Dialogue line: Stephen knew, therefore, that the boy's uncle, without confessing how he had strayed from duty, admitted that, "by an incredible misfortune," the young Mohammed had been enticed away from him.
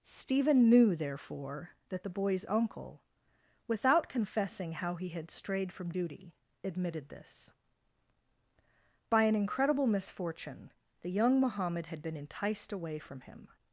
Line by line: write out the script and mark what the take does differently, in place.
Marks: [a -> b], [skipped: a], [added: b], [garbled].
Stephen knew, therefore, that the boy's uncle, without confessing how he had strayed from duty, admitted [that, -> this] "by an incredible misfortune," the young Mohammed had been enticed away from him.